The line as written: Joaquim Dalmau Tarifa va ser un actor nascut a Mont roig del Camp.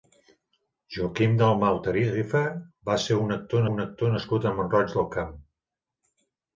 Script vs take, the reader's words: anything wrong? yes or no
yes